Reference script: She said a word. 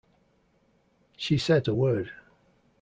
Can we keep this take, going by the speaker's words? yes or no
yes